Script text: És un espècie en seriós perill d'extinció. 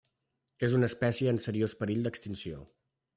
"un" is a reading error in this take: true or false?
true